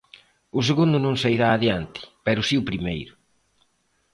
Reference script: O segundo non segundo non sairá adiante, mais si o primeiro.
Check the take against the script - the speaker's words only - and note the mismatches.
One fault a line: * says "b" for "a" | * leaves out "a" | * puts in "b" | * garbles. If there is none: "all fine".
* leaves out "segundo non"
* says "pero" for "mais"